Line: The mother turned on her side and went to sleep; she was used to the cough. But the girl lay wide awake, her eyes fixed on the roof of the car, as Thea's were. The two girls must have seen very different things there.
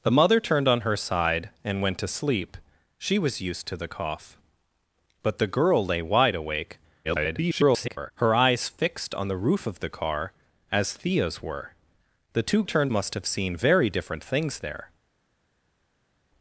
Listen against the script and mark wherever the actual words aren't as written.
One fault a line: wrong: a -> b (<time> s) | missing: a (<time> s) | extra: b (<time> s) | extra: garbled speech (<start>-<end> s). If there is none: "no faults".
extra: garbled speech (7.0-8.1 s)
wrong: girls -> turned (12.6 s)